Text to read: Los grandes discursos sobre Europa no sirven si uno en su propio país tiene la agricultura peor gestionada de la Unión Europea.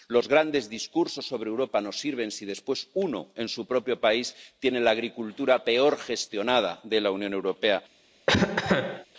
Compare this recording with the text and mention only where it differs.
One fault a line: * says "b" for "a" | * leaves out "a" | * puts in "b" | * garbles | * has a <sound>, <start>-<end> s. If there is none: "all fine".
* puts in "después"
* has a cough, 8.3-9.1 s